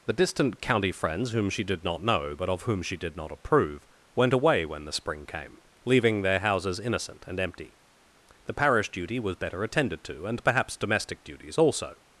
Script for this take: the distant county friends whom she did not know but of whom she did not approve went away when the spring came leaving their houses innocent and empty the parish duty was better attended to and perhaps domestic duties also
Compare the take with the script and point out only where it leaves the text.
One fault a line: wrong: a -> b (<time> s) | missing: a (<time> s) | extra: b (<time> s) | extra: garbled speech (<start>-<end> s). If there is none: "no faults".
no faults